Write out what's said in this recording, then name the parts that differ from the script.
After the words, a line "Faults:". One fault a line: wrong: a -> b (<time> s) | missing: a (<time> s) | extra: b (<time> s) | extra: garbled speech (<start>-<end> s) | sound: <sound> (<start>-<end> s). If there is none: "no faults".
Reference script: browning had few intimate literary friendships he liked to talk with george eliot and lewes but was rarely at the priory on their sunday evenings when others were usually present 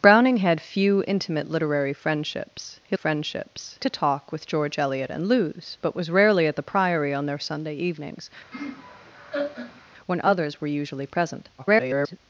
browning had few intimate literary friendships he friendships to talk with george eliot and lewes but was rarely at the priory on their sunday evenings when others were usually present [garbled]
Faults:
wrong: liked -> friendships (2.9 s)
sound: laugh (8.5-9.8 s)
extra: garbled speech (11.6-12.2 s)